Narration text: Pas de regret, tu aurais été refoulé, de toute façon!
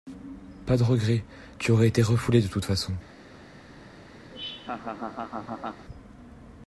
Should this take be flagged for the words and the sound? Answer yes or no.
yes